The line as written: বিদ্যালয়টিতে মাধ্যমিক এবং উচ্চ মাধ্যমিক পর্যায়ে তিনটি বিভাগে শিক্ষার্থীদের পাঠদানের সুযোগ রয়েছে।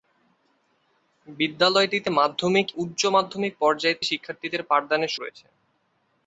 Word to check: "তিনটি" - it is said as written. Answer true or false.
false